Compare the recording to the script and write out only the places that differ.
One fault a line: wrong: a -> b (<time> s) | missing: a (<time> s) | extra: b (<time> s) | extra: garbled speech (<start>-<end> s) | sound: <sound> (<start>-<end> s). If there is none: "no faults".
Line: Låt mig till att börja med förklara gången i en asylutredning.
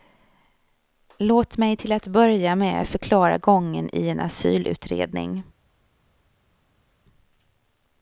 no faults